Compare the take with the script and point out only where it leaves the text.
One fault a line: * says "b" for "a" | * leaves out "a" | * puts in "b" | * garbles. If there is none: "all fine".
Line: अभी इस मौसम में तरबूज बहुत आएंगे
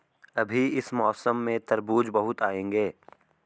all fine